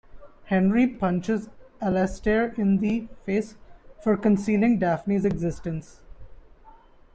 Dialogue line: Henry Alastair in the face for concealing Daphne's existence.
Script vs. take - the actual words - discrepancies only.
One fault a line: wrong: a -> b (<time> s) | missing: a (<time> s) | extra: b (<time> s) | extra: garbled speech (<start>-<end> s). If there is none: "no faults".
extra: punches (0.9 s)